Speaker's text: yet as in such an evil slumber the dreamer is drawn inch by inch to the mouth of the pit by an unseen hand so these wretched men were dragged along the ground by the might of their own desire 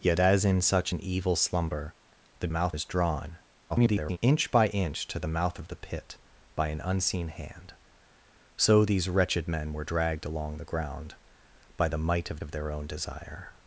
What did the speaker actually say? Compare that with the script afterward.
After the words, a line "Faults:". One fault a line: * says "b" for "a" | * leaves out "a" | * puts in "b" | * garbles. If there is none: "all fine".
yet as in such an evil slumber the mouth is drawn [garbled] inch by inch to the mouth of the pit by an unseen hand so these wretched men were dragged along the ground by the might of of their own desire
Faults:
* says "mouth" for "dreamer"
* garbles
* puts in "of"